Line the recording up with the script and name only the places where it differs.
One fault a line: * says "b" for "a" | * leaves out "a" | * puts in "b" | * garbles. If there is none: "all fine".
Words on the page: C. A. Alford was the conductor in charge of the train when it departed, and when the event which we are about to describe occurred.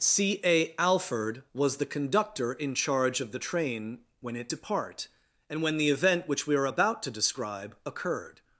* says "depart" for "departed"